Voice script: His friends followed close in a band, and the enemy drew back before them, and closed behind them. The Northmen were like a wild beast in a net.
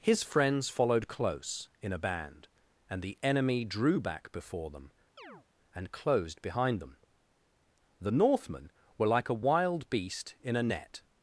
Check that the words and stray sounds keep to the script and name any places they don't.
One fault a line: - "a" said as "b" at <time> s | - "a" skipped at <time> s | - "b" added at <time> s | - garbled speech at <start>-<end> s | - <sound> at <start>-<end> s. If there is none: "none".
- chirp at 5.2-5.5 s